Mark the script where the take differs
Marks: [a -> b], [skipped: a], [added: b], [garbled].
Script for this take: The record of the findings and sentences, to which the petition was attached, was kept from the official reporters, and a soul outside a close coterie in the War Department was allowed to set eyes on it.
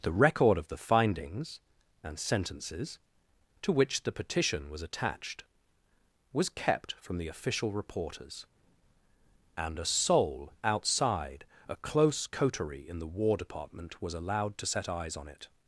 The record of the findings and sentences, to which the petition was attached, was kept from the official reporters, and a soul outside a close coterie in the War Department was allowed to set eyes on it.